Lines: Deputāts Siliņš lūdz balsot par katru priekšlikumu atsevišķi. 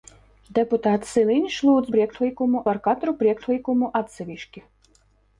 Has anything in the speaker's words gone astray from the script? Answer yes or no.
yes